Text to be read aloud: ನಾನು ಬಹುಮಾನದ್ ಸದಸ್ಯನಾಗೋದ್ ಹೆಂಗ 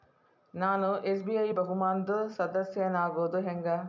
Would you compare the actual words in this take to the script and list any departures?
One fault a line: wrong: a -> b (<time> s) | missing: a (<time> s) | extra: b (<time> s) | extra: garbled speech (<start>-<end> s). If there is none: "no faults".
extra: ಎಸ್.ಬಿ.ಐ (1.1 s)